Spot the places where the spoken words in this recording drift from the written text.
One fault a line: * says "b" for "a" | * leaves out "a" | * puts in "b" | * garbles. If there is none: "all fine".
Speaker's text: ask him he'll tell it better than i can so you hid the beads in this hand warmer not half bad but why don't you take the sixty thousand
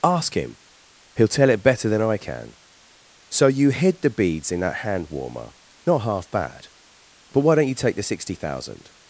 * says "that" for "this"